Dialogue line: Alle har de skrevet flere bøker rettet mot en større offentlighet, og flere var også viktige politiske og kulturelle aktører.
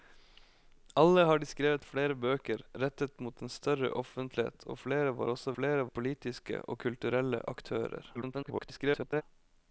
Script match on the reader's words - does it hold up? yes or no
no